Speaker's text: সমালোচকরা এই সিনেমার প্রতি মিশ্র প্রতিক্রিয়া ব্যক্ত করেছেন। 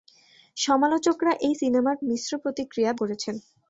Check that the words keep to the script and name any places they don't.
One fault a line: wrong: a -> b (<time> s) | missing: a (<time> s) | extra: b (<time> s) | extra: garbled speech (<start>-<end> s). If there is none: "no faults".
missing: প্রতি (2.0 s)
missing: ব্যক্ত (2.9 s)